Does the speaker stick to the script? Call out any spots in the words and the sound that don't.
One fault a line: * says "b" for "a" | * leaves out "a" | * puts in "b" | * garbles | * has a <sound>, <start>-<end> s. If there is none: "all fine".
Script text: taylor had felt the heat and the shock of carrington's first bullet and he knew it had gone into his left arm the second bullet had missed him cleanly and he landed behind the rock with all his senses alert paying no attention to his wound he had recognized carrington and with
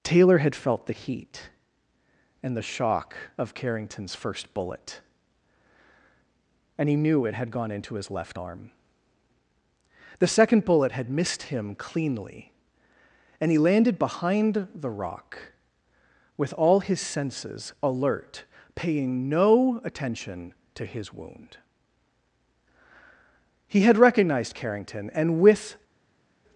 all fine